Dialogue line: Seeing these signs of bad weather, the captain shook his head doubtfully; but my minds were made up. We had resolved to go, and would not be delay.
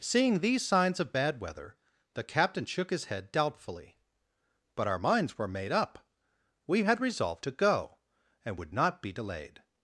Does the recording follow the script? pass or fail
fail